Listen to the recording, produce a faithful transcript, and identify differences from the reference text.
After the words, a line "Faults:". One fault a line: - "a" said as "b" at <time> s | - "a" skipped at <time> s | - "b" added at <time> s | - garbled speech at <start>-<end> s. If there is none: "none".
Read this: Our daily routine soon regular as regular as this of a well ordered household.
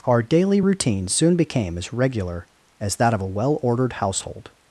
Our daily routine soon became as regular as that of a well ordered household.
Faults:
- "regular" said as "became" at 1.3 s
- "this" said as "that" at 3.0 s